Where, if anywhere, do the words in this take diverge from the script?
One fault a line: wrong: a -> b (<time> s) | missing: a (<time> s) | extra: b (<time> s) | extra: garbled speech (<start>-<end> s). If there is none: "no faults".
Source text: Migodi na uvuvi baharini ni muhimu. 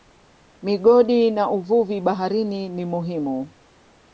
no faults